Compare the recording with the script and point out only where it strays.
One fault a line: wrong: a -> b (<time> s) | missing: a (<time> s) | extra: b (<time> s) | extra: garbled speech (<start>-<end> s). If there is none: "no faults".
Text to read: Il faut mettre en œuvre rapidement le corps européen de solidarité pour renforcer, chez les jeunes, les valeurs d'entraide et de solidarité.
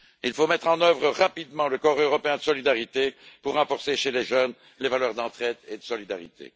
no faults